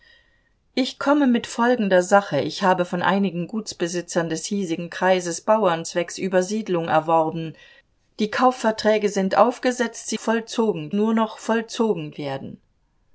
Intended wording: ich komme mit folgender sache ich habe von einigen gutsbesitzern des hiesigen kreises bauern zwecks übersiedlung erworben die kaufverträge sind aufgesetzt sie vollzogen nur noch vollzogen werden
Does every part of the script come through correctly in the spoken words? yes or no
yes